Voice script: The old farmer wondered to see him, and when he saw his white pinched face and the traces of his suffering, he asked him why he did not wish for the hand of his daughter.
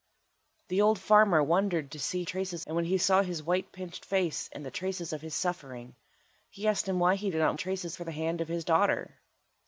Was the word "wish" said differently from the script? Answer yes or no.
yes